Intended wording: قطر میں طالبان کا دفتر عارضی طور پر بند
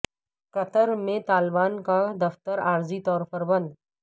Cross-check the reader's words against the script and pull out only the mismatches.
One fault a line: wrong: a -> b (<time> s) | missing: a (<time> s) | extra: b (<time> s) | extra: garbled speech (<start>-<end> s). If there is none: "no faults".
no faults